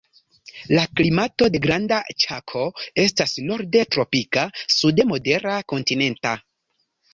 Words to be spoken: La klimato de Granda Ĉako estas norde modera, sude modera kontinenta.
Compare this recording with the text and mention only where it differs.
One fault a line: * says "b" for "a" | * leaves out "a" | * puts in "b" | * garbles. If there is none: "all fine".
* says "tropika" for "modera"